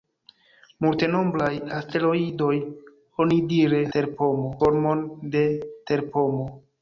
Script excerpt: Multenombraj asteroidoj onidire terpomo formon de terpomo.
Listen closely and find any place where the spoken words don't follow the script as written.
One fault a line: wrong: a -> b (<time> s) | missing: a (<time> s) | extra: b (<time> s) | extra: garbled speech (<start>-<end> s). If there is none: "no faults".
no faults